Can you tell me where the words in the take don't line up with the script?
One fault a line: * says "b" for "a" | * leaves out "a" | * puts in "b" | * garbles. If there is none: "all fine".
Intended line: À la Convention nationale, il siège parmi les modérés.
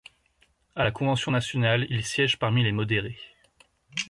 all fine